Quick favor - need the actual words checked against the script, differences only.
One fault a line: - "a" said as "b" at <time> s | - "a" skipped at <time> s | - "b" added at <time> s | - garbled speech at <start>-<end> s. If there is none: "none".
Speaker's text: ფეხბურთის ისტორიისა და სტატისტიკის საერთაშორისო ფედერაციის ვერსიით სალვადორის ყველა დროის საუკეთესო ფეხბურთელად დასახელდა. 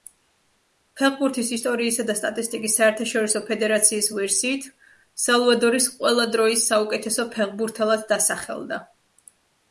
none